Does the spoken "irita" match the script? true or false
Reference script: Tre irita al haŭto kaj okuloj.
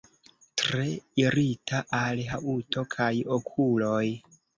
true